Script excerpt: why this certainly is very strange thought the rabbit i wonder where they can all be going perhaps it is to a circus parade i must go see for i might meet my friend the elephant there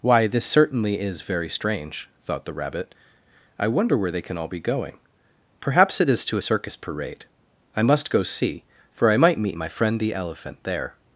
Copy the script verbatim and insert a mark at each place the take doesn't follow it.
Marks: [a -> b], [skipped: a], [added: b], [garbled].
why this certainly is very strange thought the rabbit i wonder where they can all be going perhaps it is to a circus parade i must go see for i might meet my friend the elephant there